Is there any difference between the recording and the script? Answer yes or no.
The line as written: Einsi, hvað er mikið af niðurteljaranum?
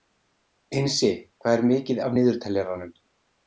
no